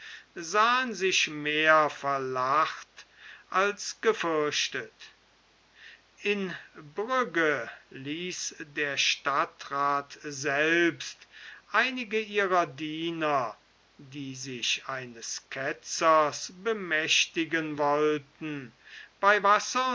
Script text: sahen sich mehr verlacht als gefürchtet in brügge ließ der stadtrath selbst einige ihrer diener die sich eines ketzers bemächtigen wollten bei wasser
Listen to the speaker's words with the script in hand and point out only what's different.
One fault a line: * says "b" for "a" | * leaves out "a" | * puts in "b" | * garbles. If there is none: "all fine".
all fine